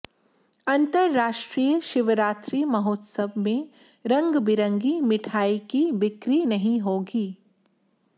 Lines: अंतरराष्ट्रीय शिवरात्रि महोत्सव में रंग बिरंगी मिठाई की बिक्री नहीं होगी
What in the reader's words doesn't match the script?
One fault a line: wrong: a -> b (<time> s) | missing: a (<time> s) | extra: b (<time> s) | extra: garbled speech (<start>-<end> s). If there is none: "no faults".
no faults